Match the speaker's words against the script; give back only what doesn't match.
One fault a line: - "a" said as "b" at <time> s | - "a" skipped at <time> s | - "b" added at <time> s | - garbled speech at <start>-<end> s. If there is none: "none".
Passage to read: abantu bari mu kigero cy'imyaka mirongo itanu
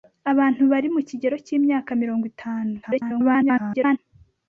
- garbled speech at 2.8-4.0 s